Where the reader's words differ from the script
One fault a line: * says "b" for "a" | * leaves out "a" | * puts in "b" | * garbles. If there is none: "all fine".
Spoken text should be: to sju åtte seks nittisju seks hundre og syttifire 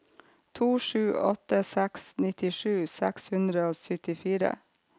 all fine